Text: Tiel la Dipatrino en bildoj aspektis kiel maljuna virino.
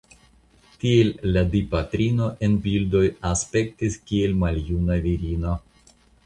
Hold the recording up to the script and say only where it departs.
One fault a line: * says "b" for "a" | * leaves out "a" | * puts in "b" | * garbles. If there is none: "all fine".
all fine